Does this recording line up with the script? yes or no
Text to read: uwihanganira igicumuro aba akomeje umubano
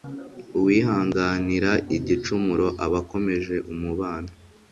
yes